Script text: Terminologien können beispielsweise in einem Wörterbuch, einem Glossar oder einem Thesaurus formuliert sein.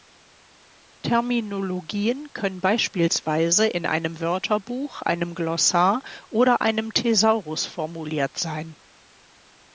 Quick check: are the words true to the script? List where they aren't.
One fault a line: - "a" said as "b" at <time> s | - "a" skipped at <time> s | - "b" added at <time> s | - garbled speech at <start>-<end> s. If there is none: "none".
none